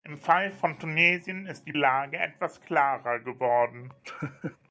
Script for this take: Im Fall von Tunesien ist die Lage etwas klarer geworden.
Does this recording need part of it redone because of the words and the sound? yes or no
yes